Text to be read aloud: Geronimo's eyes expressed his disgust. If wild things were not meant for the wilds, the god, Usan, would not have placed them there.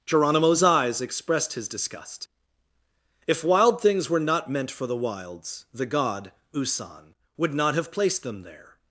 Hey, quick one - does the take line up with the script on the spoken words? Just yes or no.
yes